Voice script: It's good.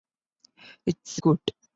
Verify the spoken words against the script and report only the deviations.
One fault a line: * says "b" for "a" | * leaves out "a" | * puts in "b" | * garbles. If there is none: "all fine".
all fine